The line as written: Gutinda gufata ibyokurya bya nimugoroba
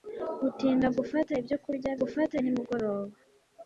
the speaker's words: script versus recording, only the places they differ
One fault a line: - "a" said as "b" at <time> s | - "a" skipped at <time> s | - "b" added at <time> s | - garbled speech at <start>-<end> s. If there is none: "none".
- "bya" said as "gufata" at 2.0 s